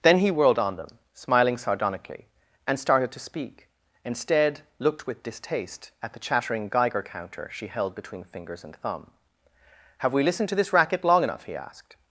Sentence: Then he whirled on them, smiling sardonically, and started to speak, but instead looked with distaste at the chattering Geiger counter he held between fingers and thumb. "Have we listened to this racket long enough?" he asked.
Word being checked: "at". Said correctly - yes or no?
yes